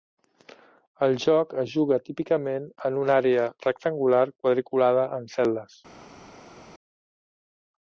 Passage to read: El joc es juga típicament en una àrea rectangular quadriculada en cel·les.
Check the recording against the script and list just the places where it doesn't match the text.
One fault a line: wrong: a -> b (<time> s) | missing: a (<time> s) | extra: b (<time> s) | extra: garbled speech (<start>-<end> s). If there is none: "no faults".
no faults